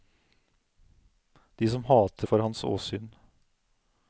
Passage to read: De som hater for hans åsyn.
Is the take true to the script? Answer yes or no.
yes